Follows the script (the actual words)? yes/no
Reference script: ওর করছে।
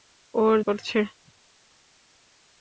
yes